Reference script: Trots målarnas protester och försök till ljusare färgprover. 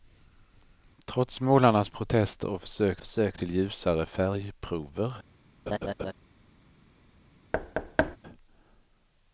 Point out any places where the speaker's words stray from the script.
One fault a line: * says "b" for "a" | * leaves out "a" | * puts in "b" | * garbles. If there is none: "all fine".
* puts in "försök"